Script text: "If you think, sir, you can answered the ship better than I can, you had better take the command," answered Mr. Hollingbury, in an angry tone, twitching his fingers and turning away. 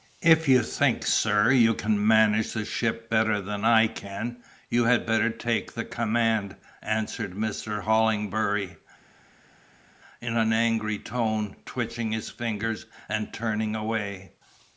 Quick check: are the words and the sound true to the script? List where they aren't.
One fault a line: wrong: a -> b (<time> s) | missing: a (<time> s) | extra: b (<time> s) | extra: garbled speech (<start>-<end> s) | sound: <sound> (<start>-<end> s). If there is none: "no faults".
wrong: answered -> manage (2.1 s)